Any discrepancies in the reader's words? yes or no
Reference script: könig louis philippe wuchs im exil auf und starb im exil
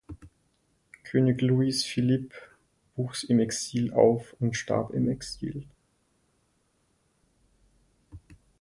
no